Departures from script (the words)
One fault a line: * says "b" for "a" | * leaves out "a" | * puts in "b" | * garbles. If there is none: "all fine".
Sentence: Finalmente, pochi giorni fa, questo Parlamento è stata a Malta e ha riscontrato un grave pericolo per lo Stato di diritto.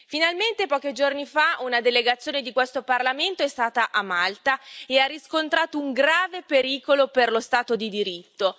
* puts in "una delegazione di"